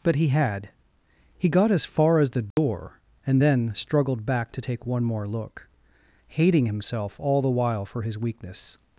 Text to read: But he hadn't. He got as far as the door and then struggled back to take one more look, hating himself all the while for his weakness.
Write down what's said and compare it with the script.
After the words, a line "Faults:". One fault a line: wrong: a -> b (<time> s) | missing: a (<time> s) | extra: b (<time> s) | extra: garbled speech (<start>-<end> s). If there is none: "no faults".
But he had. He got as far as the door and then struggled back to take one more look, hating himself all the while for his weakness.
Faults:
wrong: hadn't -> had (0.3 s)